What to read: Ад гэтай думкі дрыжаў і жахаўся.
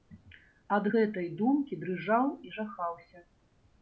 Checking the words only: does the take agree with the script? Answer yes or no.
yes